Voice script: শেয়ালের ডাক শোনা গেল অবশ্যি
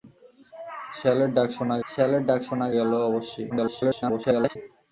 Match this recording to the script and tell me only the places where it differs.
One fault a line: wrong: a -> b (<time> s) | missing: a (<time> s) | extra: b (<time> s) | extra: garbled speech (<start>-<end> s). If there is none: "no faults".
extra: শেয়ালের ডাক শোনা (1.9 s)
extra: garbled speech (3.5-4.6 s)